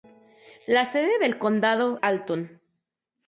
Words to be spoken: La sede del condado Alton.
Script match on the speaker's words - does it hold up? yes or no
yes